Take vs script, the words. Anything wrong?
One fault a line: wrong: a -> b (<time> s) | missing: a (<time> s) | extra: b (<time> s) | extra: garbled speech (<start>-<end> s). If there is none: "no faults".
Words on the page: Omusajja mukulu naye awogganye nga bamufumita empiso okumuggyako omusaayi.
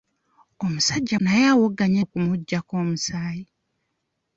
missing: mukulu (1.2 s)
missing: nga bamufumita empiso (2.0 s)